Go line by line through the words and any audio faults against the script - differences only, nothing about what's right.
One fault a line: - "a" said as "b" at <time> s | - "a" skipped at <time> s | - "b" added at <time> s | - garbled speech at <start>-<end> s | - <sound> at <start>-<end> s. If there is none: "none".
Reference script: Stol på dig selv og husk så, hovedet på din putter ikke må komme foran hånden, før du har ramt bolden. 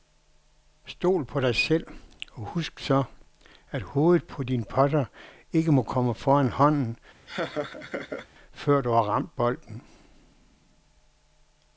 - "at" added at 3.7 s
- laugh at 7.3-8.3 s